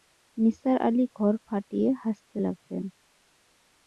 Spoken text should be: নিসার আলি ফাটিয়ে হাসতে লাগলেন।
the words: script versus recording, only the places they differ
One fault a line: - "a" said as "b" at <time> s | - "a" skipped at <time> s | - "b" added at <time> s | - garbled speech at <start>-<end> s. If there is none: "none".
- "ঘর" added at 1.1 s